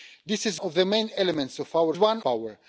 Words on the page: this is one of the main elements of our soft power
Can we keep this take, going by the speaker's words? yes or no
no